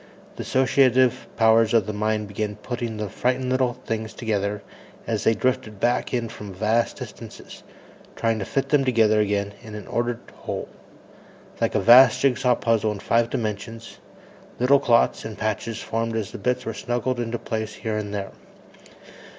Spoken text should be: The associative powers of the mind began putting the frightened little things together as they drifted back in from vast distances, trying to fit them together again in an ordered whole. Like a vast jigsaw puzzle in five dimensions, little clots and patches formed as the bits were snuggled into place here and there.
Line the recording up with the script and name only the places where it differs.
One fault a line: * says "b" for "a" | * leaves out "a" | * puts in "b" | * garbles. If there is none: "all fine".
all fine